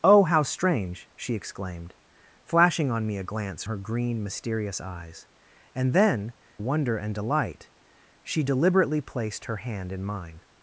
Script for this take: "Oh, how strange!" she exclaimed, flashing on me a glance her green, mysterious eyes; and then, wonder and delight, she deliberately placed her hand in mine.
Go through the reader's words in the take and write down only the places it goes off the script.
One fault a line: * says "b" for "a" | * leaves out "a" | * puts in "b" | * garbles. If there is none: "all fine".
all fine